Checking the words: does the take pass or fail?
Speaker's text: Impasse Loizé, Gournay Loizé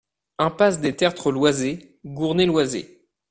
fail